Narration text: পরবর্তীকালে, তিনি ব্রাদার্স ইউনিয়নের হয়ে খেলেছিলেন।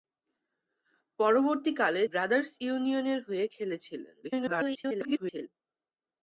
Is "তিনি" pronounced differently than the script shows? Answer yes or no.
yes